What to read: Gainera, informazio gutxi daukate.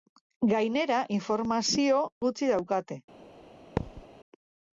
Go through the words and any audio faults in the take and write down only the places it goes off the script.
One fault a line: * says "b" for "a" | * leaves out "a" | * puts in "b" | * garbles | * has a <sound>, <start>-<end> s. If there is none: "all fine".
* has a thud, 3.8-4.1 s